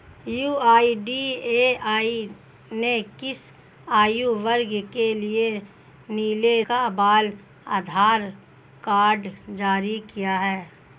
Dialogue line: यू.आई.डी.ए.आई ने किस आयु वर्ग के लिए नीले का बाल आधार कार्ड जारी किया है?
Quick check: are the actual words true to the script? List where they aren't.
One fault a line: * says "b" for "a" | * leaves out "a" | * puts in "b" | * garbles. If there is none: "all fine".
all fine